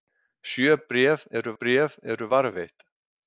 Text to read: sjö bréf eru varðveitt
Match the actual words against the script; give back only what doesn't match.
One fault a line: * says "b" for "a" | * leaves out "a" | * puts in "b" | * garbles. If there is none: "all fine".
* puts in "bréf eru"